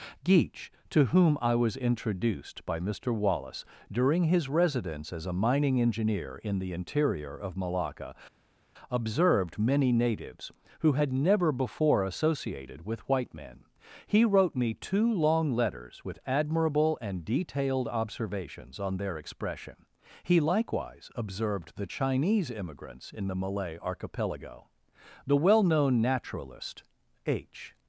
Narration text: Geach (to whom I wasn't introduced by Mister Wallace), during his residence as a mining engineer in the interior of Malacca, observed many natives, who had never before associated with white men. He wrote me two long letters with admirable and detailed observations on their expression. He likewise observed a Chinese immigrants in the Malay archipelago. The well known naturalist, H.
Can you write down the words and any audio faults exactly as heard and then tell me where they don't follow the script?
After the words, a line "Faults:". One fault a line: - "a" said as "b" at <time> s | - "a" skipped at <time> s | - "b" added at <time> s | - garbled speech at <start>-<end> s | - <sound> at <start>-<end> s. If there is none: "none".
Geach (to whom I was introduced by Mister Wallace), during his residence as a mining engineer in the interior of Malacca, observed many natives, who had never before associated with white men. He wrote me two long letters with admirable and detailed observations on their expression. He likewise observed the Chinese immigrants in the Malay archipelago. The well known naturalist, H.
Faults:
- "wasn't" said as "was" at 1.6 s
- "a" said as "the" at 21.8 s